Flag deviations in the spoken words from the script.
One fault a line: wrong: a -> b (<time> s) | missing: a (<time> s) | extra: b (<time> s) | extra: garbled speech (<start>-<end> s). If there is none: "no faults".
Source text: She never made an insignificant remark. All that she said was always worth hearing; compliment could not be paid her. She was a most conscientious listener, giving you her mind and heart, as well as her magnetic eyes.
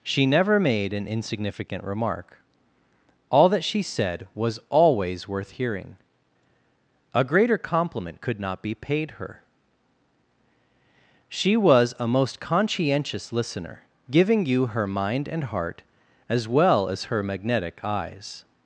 extra: a greater (7.1 s)